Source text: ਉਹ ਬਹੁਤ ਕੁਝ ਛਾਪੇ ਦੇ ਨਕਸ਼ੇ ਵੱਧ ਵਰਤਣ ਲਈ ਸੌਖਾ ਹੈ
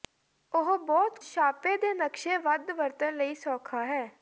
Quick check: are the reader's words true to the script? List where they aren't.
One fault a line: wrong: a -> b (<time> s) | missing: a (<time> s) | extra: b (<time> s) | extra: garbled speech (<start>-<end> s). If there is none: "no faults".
missing: ਕੁਝ (1.2 s)